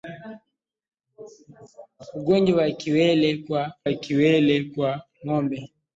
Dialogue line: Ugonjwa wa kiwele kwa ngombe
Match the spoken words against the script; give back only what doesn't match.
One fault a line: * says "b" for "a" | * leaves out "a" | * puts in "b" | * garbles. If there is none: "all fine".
* puts in "wa kiwele kwa"